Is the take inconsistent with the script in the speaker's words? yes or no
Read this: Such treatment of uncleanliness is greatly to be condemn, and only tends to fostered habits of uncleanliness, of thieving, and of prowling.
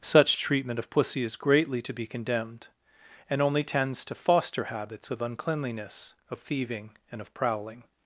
yes